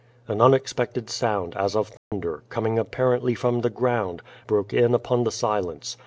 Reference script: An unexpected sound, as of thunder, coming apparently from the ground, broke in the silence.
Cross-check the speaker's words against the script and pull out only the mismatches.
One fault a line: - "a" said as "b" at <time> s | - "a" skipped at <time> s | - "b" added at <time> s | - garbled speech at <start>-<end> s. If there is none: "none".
- "upon" added at 4.9 s